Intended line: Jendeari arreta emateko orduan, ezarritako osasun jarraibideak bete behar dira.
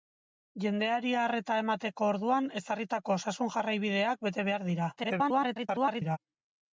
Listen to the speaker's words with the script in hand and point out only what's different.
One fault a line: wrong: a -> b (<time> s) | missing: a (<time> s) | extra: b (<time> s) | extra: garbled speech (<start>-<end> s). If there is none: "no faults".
extra: garbled speech (5.0-6.2 s)